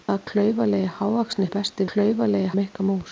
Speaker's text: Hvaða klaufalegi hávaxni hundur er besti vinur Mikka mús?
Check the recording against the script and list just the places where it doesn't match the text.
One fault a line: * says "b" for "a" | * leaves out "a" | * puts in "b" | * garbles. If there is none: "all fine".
* leaves out "hundur"
* says "klaufalegi" for "vinur"